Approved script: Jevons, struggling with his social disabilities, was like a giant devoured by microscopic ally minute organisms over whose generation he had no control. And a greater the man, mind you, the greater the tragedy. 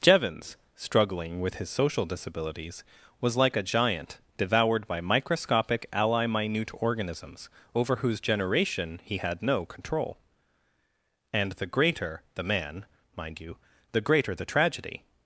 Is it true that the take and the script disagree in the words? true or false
true